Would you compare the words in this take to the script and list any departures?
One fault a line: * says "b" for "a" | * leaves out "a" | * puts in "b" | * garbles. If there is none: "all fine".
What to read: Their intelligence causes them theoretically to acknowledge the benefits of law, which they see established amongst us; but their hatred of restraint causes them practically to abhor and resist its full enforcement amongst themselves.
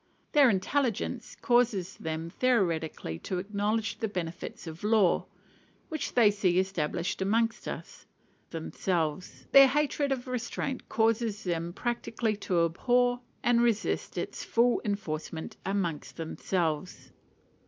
* says "themselves" for "but"